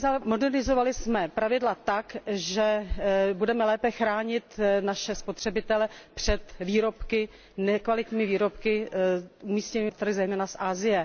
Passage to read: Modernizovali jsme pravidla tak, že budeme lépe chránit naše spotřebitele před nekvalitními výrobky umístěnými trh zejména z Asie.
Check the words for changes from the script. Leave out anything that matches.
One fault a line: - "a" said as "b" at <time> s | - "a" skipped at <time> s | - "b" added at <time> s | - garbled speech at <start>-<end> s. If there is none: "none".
none